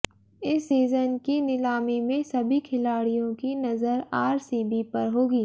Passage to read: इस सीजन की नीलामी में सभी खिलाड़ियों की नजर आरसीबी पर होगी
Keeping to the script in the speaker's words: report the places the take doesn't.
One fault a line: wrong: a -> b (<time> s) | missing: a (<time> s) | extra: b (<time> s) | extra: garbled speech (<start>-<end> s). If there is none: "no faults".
no faults